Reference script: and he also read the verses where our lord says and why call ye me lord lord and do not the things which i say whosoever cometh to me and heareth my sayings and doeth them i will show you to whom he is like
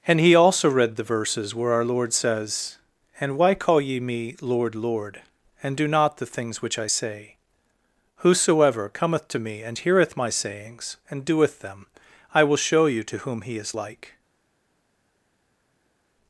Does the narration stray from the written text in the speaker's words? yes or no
no